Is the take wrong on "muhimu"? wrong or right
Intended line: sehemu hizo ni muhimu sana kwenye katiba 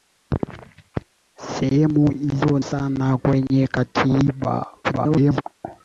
wrong